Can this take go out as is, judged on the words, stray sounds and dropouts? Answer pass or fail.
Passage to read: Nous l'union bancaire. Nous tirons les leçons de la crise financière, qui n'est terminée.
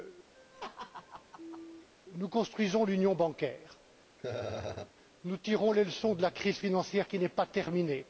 fail